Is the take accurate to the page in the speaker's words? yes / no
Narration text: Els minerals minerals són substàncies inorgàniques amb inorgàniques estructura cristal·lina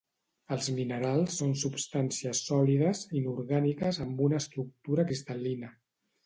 no